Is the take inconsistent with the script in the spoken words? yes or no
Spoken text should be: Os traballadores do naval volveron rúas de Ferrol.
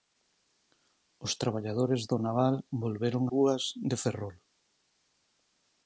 no